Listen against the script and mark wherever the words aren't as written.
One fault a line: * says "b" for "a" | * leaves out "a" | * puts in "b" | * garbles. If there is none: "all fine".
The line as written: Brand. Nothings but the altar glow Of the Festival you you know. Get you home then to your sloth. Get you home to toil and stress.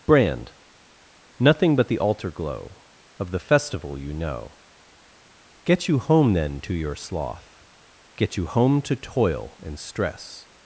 * says "Nothing" for "Nothings"
* leaves out "you"